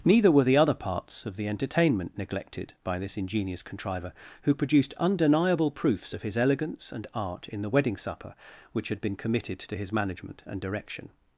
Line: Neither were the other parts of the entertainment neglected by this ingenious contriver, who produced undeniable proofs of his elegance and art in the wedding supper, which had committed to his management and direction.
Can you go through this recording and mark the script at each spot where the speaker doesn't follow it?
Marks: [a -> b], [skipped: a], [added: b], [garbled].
Neither were the other parts of the entertainment neglected by this ingenious contriver, who produced undeniable proofs of his elegance and art in the wedding supper, which had [added: been] committed to his management and direction.